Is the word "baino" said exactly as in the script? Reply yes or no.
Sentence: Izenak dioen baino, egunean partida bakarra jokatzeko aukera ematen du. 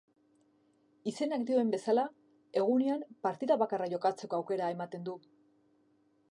no